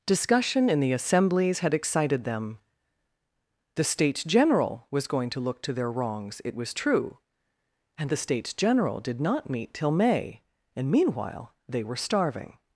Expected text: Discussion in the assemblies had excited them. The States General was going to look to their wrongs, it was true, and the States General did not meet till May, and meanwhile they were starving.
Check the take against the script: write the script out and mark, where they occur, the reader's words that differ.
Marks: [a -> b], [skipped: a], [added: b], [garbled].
Discussion in the assemblies had excited them. The States General was going to look to their wrongs, it was true, and the States General did not meet till May, and meanwhile they were starving.